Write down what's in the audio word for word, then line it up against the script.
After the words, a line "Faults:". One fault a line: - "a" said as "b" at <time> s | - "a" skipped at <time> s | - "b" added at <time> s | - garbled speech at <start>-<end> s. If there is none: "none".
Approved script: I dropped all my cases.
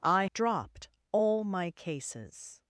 I dropped all my cases.
Faults:
none